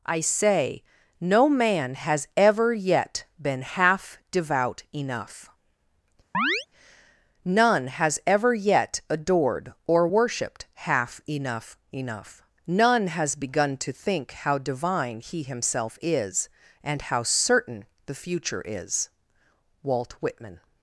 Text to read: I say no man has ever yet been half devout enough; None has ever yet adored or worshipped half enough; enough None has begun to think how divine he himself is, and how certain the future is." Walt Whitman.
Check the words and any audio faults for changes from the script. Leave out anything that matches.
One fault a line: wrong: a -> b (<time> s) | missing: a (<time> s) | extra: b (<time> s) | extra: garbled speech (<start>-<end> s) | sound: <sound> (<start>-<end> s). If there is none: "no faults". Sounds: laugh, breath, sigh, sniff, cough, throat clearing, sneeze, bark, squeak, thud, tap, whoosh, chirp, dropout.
sound: chirp (6.3-6.7 s)